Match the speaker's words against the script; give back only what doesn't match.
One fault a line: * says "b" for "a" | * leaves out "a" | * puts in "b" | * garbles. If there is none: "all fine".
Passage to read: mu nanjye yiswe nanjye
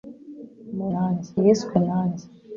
all fine